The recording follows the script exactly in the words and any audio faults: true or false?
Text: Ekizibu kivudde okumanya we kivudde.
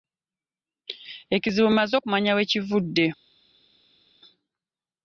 false